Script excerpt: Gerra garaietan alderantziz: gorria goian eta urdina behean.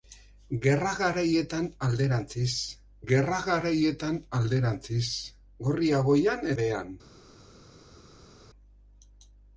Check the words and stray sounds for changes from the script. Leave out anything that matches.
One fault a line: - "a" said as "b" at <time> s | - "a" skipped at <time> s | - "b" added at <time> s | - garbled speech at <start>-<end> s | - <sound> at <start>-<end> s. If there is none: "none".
- "gerra garaietan alderantziz" added at 3.1 s
- "eta urdina" skipped at 6.5 s